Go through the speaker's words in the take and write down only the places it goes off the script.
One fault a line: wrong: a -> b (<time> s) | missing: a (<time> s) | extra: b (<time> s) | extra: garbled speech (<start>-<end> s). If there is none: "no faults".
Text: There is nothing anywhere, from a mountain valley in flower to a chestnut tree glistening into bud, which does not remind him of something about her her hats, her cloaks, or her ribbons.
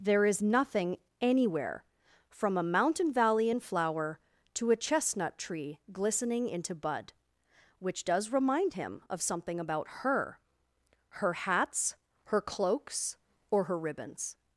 missing: not (8.3 s)